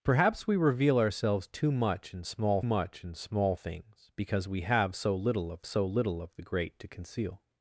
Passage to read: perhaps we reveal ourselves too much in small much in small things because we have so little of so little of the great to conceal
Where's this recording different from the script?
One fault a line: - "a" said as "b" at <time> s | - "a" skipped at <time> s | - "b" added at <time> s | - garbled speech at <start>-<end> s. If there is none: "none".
none